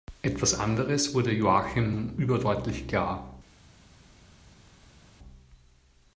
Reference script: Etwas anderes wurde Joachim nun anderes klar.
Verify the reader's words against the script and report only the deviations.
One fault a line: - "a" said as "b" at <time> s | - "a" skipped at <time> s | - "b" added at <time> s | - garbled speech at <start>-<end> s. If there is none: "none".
- "anderes" said as "überdeutlich" at 2.2 s